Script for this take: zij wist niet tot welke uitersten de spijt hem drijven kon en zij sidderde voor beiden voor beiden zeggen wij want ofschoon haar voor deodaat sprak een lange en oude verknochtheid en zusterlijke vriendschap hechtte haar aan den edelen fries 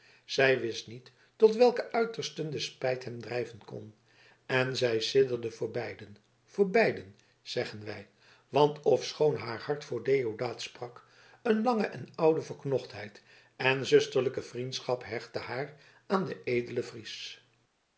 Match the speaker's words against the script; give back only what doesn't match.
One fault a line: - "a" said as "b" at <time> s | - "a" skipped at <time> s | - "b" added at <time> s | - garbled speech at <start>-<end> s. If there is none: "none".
- "hart" added at 9.6 s